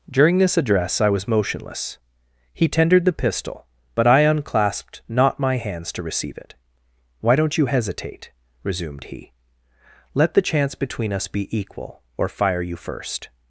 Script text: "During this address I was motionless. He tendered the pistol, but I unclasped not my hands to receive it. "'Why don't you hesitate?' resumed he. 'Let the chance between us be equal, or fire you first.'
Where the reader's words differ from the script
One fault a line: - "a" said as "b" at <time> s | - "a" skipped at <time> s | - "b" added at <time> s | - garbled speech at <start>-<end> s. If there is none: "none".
none